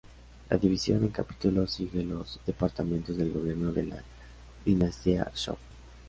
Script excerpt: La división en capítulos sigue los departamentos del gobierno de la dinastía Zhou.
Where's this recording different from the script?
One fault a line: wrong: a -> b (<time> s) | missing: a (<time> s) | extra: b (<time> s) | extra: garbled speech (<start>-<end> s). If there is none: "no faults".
no faults